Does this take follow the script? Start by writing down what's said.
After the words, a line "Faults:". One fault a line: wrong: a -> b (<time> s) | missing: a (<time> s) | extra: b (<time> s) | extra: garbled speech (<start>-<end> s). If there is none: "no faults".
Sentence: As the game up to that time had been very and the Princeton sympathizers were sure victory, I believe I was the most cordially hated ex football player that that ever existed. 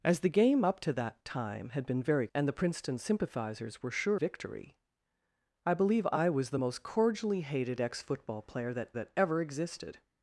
As the game up to that time had been very and the Princeton sympathizers were sure victory, I believe I was the most cordially hated ex football player that that ever existed.
Faults:
no faults